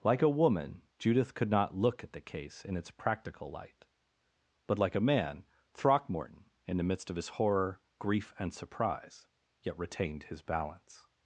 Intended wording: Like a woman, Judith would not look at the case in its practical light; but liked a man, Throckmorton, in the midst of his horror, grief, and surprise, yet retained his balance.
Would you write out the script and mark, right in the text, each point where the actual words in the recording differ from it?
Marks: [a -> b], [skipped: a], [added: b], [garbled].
Like a woman, Judith [would -> could] not look at the case in its practical light; but [liked -> like] a man, Throckmorton, in the midst of his horror, grief, and surprise, yet retained his balance.